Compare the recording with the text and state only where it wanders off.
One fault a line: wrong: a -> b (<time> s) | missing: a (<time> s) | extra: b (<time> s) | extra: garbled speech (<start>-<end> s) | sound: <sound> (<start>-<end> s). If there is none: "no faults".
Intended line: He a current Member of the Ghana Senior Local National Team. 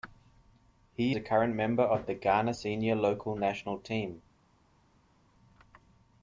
no faults